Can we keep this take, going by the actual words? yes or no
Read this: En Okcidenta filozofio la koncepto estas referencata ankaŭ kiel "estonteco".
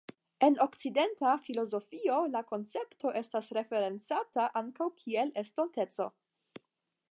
yes